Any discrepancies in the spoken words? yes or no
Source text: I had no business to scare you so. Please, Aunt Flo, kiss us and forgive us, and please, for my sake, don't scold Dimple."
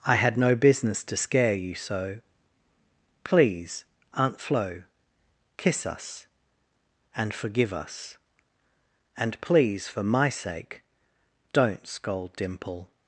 no